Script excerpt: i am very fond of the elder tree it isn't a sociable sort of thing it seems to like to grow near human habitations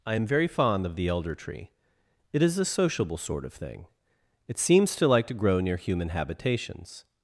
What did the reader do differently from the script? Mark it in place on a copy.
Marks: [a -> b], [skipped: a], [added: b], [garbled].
i am very fond of the elder tree it [isn't -> is] a sociable sort of thing it seems to like to grow near human habitations